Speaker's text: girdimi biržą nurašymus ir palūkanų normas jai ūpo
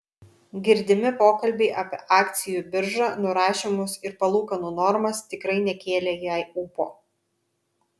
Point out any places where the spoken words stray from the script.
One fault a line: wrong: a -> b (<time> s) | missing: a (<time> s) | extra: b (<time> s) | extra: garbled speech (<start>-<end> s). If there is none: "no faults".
extra: pokalbiai apie akcijų (1.2 s)
extra: tikrai nekėlė (5.3 s)